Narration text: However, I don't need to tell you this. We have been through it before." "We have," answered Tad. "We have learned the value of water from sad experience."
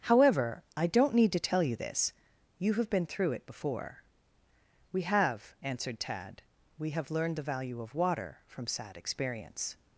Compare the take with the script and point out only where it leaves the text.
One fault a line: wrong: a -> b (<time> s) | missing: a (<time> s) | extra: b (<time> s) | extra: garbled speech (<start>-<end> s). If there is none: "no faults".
wrong: We -> You (2.6 s)